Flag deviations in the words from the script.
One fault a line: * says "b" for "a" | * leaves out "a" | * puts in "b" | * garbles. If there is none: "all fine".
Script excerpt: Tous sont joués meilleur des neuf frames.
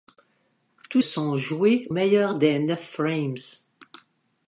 all fine